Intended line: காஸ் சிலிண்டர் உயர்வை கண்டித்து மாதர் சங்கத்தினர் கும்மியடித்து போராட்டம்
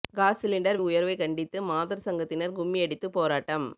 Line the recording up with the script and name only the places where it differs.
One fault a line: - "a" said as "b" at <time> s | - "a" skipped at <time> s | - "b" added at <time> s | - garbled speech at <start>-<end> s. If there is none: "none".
none